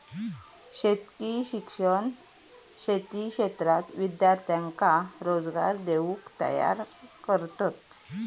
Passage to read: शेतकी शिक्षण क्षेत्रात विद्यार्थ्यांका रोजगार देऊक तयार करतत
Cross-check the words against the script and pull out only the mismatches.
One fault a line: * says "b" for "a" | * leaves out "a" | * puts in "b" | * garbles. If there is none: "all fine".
* puts in "शेती"